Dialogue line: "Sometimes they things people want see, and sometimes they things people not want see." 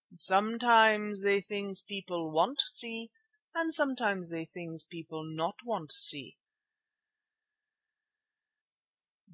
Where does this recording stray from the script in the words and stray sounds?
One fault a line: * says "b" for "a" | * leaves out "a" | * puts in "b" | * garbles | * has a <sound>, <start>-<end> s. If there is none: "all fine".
all fine